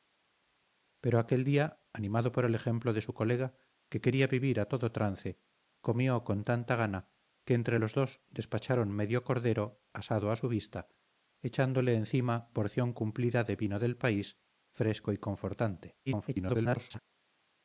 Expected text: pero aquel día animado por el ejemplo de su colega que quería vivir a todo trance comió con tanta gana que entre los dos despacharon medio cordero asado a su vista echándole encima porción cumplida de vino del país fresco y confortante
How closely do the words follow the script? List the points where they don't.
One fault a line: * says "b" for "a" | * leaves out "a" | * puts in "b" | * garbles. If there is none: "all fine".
* garbles